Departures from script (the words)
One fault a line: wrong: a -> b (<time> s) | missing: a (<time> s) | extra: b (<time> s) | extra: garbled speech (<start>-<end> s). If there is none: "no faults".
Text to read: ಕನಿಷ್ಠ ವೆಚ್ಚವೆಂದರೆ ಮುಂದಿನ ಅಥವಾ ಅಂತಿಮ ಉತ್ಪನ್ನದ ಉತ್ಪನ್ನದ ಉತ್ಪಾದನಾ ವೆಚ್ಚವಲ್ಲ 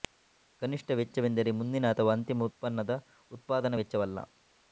missing: ಉತ್ಪನ್ನದ (2.9 s)